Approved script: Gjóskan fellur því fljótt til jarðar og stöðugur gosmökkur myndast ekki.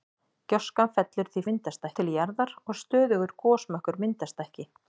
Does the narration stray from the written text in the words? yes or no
yes